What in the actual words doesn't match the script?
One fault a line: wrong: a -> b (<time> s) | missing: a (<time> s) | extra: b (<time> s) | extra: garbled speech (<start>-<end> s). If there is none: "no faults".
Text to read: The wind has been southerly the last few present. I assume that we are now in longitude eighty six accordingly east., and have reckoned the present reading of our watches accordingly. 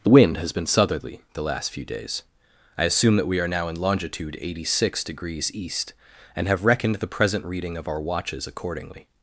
wrong: present -> days (1.8 s)
wrong: accordingly -> degrees (5.0 s)